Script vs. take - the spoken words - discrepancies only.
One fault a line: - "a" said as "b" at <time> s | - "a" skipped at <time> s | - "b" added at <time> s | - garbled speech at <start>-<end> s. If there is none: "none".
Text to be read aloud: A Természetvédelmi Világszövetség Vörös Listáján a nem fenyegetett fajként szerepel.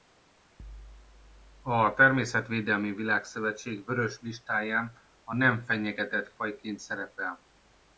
none